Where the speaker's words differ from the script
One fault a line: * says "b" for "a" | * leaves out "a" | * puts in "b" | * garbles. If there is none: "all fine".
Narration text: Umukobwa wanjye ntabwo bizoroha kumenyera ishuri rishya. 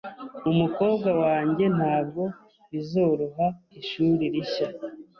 * leaves out "kumenyera"